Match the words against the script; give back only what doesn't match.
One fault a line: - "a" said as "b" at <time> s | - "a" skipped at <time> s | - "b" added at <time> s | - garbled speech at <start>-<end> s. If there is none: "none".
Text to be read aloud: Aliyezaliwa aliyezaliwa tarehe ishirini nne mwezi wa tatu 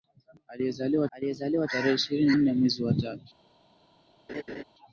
none